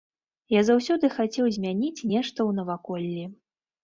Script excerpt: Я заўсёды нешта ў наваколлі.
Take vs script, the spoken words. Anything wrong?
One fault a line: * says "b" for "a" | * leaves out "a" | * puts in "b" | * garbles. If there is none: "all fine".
* puts in "хацеў змяніць"